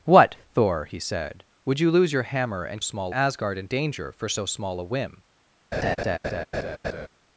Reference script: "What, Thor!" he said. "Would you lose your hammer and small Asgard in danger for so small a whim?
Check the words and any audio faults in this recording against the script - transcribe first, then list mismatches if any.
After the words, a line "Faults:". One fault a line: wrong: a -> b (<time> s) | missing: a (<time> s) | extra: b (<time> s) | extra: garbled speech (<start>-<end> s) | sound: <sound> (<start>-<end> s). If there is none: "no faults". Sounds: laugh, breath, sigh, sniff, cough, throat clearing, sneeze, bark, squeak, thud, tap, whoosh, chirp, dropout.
"What, Thor!" he said. "Would you lose your hammer and small Asgard in danger for so small a whim?
Faults:
sound: laugh (5.7-7.1 s)